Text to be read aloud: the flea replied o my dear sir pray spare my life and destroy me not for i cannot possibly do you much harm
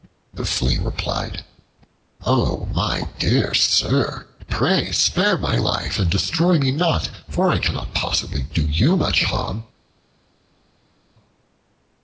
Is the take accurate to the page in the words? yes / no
yes